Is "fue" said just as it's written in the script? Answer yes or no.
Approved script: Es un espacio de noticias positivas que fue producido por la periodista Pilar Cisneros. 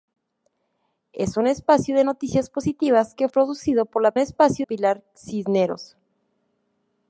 no